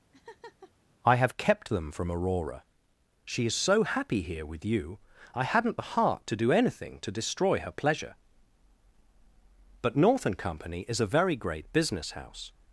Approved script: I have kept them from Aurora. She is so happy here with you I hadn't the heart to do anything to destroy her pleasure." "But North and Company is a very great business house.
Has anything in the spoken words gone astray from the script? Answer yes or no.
no